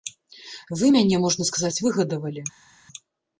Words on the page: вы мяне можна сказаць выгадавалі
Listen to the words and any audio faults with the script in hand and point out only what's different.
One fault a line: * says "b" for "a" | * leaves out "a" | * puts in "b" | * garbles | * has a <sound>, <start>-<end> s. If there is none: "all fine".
all fine